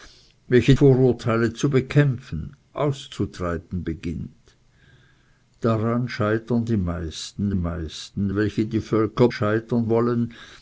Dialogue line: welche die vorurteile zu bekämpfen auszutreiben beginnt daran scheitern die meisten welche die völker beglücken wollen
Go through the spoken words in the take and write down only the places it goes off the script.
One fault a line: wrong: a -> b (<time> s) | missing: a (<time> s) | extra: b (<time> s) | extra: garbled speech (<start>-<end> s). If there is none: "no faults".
missing: die (0.8 s)
extra: meisten (7.5 s)
wrong: beglücken -> scheitern (9.3 s)